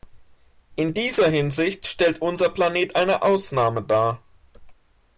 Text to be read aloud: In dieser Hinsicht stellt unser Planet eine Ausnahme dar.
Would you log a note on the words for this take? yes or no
no